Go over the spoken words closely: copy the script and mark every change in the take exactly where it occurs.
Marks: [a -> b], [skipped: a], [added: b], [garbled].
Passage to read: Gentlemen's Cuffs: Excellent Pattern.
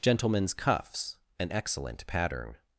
Gentlemen's Cuffs: [added: an] Excellent Pattern.